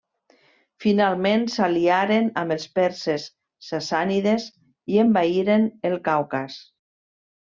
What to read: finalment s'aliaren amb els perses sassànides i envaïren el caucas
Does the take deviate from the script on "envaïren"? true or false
false